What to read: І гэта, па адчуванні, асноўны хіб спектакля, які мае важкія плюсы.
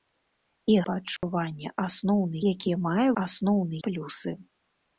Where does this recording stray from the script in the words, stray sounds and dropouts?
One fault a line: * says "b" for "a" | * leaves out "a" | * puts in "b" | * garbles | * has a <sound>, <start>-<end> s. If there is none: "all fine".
* leaves out "гэта"
* has a dropout, 1.2-1.2 s
* leaves out "хіб спектакля"
* says "асноўны" for "важкія"